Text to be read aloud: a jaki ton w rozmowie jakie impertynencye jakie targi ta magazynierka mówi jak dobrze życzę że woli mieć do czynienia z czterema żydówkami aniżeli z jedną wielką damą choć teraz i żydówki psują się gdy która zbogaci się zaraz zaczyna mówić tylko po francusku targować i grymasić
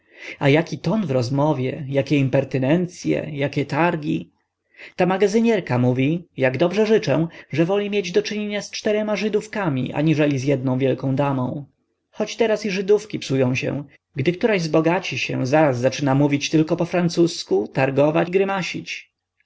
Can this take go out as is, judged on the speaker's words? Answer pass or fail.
pass